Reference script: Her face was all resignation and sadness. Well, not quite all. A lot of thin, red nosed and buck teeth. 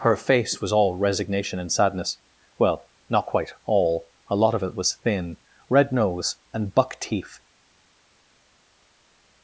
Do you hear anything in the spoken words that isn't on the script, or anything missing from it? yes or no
yes